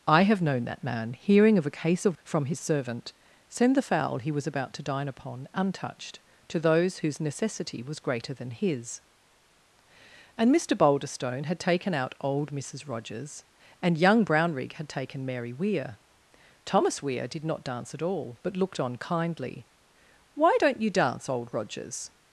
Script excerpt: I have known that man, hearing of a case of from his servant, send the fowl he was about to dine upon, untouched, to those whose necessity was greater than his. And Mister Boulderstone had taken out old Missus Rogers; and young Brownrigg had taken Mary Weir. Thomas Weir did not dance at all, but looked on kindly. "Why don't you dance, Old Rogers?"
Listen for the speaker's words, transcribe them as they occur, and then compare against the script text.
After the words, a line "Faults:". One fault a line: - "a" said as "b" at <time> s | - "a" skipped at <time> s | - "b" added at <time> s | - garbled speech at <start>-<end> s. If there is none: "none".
I have known that man, hearing of a case of from his servant, send the fowl he was about to dine upon, untouched, to those whose necessity was greater than his. And Mister Boulderstone had taken out old Missus Rogers; and young Brownrigg had taken Mary Weir. Thomas Weir did not dance at all, but looked on kindly. "Why don't you dance, Old Rogers?"
Faults:
none